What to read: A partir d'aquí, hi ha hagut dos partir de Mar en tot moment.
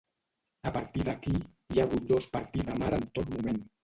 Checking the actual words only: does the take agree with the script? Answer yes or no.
yes